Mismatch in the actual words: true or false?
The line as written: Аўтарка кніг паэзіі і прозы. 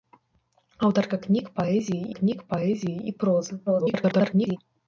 true